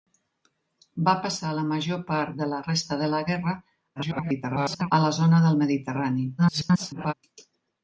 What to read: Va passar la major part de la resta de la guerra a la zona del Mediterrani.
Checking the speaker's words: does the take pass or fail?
fail